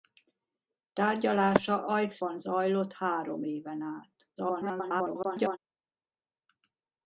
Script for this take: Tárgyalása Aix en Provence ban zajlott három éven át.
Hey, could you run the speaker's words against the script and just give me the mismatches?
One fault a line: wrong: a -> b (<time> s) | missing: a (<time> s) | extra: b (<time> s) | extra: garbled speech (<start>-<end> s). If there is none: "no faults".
missing: en Provence (2.2 s)
extra: garbled speech (4.4-5.6 s)